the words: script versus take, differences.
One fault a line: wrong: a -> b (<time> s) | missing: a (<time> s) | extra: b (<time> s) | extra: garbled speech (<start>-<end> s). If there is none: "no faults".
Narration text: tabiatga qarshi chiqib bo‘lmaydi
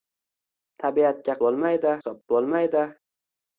wrong: qarshi -> bo‘lmaydi (1.5 s)